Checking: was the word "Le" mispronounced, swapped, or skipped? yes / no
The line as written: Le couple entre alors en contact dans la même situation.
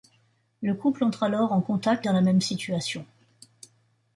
no